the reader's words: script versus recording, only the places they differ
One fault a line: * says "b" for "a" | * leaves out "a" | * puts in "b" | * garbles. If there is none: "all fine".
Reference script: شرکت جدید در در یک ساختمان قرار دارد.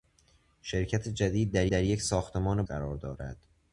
all fine